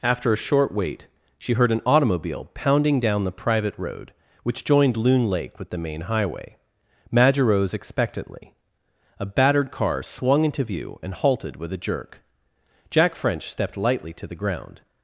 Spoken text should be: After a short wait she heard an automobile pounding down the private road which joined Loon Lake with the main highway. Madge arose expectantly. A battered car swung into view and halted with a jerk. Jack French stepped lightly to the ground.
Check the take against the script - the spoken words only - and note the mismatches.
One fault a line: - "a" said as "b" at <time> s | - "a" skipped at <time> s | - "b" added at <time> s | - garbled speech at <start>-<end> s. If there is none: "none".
none